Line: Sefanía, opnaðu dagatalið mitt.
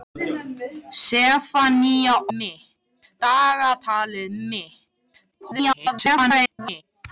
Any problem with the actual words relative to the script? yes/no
yes